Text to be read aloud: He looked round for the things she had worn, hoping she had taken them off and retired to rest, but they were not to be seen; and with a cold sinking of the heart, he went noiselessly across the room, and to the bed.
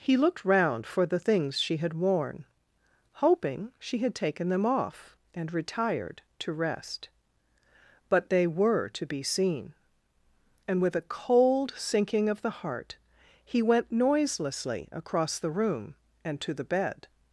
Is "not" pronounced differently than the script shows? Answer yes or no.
yes